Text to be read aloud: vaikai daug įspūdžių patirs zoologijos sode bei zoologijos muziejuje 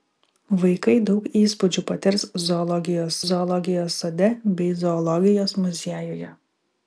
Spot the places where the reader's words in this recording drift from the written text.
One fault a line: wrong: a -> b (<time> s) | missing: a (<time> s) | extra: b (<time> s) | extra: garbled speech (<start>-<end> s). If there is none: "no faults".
extra: zoologijos (3.3 s)